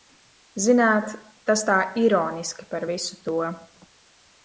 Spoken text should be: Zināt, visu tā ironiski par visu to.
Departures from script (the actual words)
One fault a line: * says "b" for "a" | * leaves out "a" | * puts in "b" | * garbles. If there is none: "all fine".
* says "tas" for "visu"